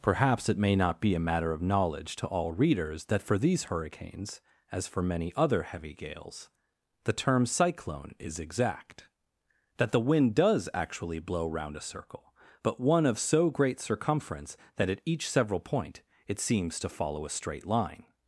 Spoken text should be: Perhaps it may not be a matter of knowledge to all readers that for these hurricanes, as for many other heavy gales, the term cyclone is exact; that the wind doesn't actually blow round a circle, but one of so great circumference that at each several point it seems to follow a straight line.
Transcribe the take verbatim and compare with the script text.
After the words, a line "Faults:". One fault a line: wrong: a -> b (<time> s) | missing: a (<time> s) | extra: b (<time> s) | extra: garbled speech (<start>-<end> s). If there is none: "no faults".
Perhaps it may not be a matter of knowledge to all readers that for these hurricanes, as for many other heavy gales, the term cyclone is exact; that the wind does actually blow round a circle, but one of so great circumference that at each several point it seems to follow a straight line.
Faults:
wrong: doesn't -> does (10.3 s)